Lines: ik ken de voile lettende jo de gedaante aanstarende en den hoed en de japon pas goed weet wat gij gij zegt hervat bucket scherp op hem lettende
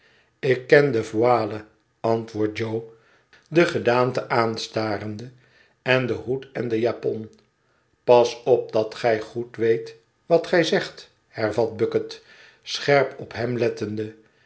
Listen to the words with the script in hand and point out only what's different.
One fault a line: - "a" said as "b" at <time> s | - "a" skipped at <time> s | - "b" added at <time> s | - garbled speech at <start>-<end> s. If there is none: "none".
- "lettende" said as "antwoordt" at 2.0 s
- "op dat gij" added at 8.4 s
- "gij" skipped at 10.6 s